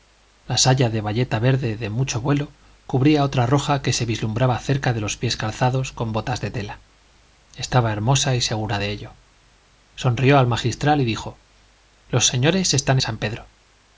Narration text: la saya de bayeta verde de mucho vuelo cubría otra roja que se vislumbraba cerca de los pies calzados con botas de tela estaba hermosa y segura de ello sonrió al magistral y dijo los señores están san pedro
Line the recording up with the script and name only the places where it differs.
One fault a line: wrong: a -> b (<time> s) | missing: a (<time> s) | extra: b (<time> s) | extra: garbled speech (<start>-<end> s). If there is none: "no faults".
no faults